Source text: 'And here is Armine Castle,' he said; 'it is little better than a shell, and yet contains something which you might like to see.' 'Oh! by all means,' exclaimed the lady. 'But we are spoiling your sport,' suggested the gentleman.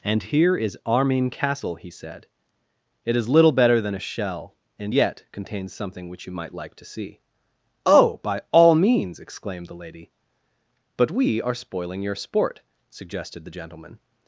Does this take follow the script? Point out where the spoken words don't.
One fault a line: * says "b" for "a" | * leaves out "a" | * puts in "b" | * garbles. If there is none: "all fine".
all fine